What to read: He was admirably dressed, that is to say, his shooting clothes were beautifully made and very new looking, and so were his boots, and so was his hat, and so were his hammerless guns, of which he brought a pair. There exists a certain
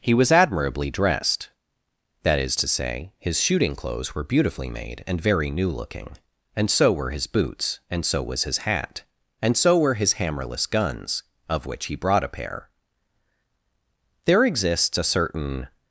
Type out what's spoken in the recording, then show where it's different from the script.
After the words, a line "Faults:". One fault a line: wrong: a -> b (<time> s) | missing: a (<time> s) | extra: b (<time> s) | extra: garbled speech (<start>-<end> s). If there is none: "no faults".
He was admirably dressed, that is to say, his shooting clothes were beautifully made and very new looking, and so were his boots, and so was his hat, and so were his hammerless guns, of which he brought a pair. There exists a certain
Faults:
no faults